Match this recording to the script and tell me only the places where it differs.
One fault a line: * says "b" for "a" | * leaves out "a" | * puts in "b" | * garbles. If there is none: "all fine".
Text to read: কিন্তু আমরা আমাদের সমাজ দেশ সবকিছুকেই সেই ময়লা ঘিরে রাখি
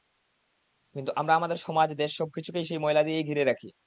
* puts in "দিয়েই"